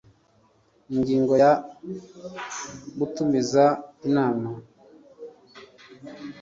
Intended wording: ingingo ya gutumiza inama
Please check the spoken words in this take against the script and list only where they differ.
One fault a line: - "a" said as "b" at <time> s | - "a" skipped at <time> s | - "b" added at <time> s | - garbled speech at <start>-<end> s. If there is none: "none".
none